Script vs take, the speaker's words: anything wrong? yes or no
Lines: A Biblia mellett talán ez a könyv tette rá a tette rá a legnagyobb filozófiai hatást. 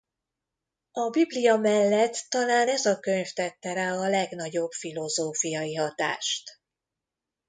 yes